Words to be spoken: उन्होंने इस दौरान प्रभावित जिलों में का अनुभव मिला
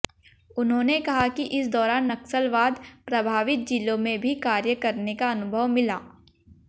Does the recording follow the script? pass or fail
fail